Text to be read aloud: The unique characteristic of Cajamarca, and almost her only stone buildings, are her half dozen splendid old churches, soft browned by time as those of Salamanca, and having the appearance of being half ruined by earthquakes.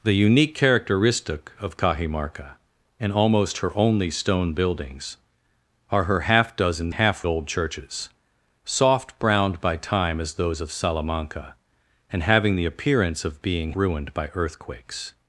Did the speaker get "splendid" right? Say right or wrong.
wrong